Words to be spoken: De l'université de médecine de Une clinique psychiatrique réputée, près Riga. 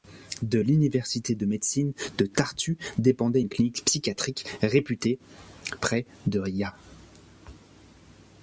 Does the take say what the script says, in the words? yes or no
no